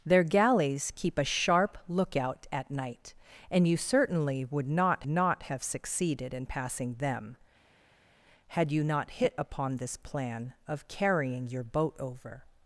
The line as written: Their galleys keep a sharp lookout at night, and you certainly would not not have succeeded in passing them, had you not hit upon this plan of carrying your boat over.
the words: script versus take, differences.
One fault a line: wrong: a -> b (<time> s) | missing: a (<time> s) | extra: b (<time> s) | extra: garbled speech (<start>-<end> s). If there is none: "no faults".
no faults